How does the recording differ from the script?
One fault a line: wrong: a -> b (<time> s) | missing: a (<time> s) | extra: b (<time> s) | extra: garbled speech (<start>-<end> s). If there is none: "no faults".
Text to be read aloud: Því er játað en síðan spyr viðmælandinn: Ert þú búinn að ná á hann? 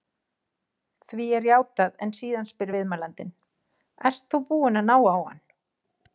no faults